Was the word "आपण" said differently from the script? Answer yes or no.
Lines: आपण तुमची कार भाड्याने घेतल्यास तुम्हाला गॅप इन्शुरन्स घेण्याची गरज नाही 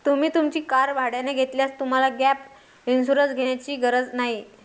yes